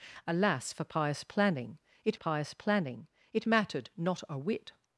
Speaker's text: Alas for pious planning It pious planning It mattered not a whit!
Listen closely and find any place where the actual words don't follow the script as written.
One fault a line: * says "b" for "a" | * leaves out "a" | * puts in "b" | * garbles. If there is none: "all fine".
all fine